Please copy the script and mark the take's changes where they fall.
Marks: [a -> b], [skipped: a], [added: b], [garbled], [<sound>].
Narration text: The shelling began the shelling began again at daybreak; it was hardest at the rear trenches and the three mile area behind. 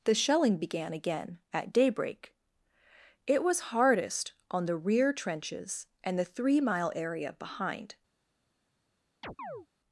The shelling began [skipped: the shelling began] again at daybreak; it was hardest [at -> on] the rear trenches and the three mile area behind. [chirp]